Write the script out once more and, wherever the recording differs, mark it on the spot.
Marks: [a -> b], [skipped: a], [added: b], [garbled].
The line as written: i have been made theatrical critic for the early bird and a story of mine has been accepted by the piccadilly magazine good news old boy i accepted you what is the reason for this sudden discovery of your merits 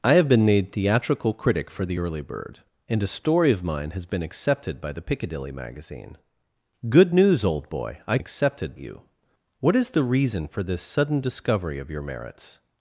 i have been made theatrical critic for the early bird and a story of mine has been accepted by the piccadilly magazine good news old boy i accepted you what is the reason for this sudden discovery of your merits